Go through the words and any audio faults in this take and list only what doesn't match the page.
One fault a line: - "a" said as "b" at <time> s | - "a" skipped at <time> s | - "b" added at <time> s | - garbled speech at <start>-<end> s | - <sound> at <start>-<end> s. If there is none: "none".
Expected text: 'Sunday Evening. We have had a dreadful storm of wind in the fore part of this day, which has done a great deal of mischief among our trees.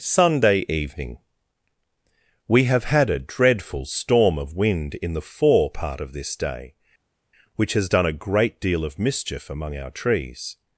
none